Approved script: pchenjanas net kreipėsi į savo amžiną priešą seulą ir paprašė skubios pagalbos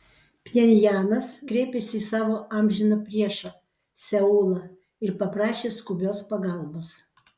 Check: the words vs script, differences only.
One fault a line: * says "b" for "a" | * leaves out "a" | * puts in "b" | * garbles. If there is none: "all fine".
* leaves out "net"